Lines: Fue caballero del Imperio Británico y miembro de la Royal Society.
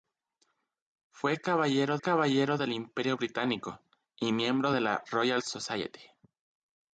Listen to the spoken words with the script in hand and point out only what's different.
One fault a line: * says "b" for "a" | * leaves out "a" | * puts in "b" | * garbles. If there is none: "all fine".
* puts in "caballero"